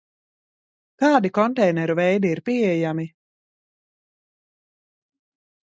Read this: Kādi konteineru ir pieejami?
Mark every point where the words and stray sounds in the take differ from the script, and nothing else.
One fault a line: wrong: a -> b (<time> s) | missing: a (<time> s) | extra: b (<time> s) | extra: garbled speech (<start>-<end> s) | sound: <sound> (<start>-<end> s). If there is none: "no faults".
extra: veidi (2.0 s)